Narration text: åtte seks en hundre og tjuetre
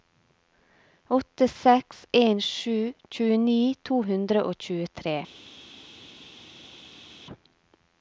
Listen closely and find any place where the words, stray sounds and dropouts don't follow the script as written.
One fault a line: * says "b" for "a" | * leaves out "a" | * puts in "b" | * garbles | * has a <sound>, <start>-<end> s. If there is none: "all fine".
* puts in "sju tjueni to"